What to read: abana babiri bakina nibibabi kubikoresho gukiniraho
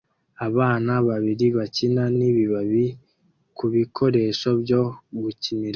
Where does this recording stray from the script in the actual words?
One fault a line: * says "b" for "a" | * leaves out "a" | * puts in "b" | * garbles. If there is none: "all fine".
* puts in "byo"